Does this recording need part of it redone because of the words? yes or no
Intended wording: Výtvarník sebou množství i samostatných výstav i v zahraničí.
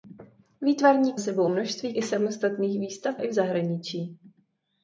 no